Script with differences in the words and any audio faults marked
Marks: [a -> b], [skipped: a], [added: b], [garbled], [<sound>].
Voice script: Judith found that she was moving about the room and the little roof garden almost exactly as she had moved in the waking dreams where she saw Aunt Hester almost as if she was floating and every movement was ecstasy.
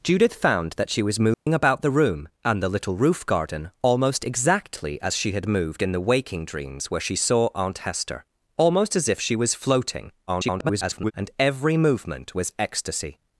Judith found that she was moving [dropout] about the room and the little roof garden almost exactly as she had moved in the waking dreams where she saw Aunt Hester almost as if she was floating [garbled] and every movement was ecstasy.